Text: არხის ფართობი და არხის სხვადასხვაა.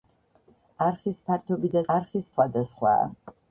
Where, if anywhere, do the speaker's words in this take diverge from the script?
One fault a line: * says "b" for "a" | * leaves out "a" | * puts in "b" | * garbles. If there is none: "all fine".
all fine